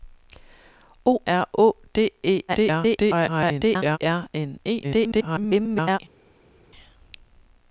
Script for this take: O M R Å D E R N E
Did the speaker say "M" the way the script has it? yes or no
no